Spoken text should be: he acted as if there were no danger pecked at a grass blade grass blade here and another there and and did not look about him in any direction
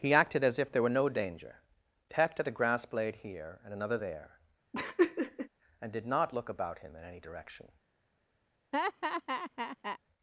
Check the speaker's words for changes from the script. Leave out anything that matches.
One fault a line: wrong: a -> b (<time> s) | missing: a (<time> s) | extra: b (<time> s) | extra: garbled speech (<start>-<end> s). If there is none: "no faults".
missing: grass blade (3.2 s)
missing: and (5.9 s)